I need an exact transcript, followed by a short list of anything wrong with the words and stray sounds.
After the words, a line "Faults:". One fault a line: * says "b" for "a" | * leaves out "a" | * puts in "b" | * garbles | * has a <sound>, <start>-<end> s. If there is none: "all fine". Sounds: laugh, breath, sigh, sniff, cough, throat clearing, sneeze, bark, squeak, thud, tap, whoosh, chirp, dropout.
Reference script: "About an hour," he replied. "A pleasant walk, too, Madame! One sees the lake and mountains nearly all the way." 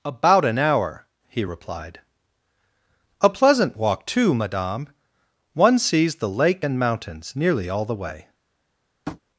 "About an hour," he replied. "A pleasant walk, too, Madame! One sees the lake and mountains nearly all the way."
Faults:
* has a tap, 9.1-9.2 s